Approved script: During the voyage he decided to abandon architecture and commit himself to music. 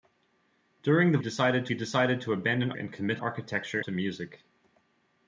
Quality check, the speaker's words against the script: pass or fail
fail